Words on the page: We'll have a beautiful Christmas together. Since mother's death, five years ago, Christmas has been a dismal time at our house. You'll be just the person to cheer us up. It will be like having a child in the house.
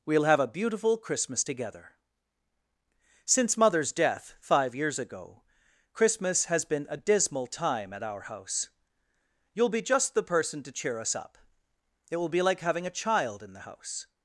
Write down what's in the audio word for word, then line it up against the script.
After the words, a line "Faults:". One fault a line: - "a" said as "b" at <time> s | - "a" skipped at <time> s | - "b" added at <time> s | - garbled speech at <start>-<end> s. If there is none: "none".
We'll have a beautiful Christmas together. Since mother's death, five years ago, Christmas has been a dismal time at our house. You'll be just the person to cheer us up. It will be like having a child in the house.
Faults:
none